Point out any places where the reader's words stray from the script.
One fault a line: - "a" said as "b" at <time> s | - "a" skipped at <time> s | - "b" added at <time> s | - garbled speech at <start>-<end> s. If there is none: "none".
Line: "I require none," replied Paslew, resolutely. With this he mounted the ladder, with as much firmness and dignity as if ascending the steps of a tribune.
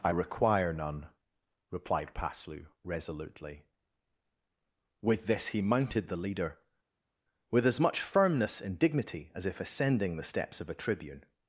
- "ladder" said as "leader" at 6.2 s